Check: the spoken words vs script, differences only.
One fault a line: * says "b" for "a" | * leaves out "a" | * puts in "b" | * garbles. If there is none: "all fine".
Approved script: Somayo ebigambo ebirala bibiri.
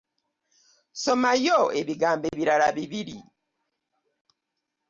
all fine